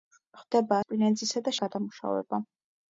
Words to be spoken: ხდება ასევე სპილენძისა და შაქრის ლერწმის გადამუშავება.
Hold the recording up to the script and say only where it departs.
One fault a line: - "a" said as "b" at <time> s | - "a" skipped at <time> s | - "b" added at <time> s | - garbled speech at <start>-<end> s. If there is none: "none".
- "ასევე" skipped at 0.8 s
- "შაქრის ლერწმის" skipped at 1.5 s